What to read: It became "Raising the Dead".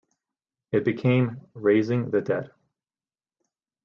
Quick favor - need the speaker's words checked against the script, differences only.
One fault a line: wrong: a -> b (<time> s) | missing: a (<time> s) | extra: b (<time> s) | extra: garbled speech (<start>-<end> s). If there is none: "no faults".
no faults